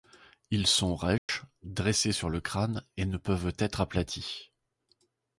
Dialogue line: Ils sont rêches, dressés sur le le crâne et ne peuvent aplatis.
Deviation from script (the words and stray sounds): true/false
true